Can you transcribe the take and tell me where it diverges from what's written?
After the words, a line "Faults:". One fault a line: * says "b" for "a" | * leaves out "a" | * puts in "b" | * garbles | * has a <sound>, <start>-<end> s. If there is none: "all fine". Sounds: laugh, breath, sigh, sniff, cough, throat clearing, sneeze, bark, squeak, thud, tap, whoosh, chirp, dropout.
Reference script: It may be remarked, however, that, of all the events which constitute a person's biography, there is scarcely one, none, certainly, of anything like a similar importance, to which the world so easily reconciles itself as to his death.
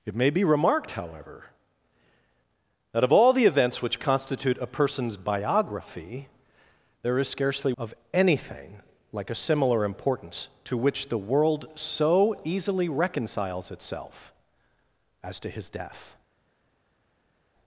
It may be remarked, however, that, of all the events which constitute a person's biography, there is scarcely of anything like a similar importance, to which the world so easily reconciles itself as to his death.
Faults:
* leaves out "one none certainly"